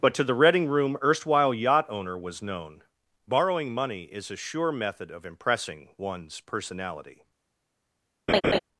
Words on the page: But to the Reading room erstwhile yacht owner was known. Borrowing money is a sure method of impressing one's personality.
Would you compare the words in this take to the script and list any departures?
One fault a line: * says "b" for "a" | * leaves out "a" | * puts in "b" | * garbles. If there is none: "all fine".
all fine